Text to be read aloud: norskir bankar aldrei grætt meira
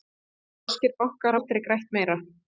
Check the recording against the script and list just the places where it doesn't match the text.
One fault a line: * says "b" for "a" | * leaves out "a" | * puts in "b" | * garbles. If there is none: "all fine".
all fine